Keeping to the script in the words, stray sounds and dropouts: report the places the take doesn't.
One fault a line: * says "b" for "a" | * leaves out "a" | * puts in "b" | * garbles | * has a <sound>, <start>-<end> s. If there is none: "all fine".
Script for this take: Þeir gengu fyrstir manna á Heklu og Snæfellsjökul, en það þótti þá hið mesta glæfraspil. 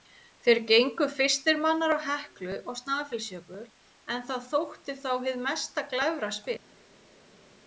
all fine